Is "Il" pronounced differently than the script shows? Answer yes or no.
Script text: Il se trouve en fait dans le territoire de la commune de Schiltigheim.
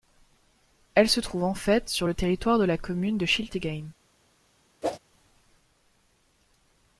yes